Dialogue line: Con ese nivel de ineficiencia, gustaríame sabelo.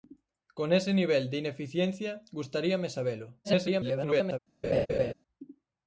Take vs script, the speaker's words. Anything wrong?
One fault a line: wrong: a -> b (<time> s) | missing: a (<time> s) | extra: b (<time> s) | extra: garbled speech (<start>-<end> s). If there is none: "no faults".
extra: garbled speech (3.4-4.4 s)